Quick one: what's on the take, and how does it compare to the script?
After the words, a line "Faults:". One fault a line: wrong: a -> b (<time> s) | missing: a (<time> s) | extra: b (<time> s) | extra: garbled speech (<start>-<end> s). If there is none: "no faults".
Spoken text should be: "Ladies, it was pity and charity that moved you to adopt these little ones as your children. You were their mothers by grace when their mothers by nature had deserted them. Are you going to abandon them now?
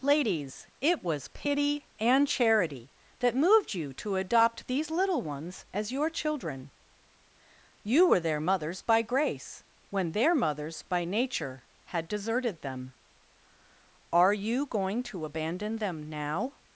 "Ladies, it was pity and charity that moved you to adopt these little ones as your children. You were their mothers by grace when their mothers by nature had deserted them. Are you going to abandon them now?
Faults:
no faults